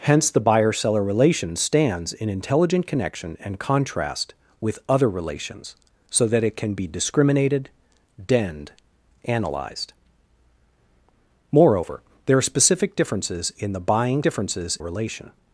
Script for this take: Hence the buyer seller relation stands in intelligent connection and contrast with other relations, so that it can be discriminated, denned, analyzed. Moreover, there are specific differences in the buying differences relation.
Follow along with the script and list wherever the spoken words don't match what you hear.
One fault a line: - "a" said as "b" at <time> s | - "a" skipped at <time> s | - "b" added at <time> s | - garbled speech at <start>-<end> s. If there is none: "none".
none